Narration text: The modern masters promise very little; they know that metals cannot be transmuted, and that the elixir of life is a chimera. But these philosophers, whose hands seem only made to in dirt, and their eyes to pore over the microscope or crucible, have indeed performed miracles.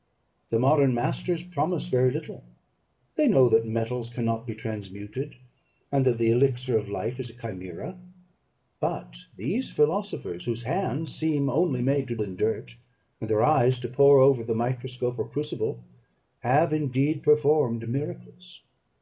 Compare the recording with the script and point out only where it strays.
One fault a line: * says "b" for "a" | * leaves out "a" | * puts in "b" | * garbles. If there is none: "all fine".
all fine